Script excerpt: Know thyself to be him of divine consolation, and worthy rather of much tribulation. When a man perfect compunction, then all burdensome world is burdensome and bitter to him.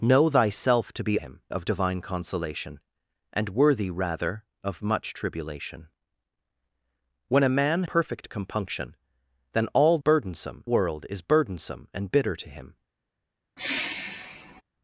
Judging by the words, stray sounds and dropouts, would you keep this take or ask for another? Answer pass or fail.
fail